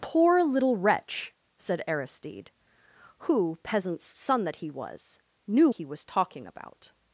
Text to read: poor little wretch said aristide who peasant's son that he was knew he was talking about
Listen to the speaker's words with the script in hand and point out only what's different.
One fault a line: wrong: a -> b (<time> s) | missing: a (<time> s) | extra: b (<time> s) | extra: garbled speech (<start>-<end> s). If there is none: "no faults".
no faults